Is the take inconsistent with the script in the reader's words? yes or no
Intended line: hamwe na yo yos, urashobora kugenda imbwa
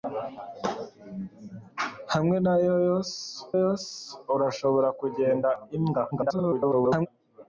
yes